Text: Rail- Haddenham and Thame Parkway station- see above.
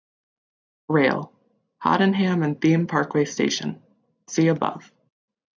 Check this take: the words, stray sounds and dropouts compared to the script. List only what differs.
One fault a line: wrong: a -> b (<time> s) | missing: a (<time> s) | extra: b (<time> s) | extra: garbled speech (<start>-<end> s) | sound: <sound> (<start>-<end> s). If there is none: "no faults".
no faults